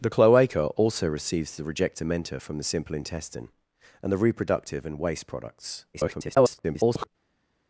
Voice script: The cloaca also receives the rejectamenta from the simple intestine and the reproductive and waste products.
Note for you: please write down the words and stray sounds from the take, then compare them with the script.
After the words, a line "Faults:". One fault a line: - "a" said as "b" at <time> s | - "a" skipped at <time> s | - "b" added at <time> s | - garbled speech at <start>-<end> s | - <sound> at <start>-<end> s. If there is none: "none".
The cloaca also receives the rejectamenta from the simple intestine and the reproductive and waste products. [garbled]
Faults:
- garbled speech at 5.9-7.1 s